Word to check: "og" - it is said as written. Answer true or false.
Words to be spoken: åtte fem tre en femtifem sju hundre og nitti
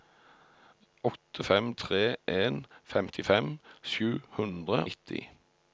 false